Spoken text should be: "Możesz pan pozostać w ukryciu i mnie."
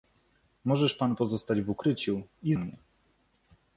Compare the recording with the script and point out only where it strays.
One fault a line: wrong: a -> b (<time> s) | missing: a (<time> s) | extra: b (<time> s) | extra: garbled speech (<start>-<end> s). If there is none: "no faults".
no faults